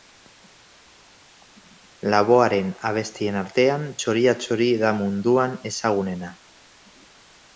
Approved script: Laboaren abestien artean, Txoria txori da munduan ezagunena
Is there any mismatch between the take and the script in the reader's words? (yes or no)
no